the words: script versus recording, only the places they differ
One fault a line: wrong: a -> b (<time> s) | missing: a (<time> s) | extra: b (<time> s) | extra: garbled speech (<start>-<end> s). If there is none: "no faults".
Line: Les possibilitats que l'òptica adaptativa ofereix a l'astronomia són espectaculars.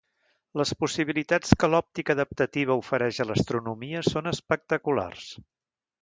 no faults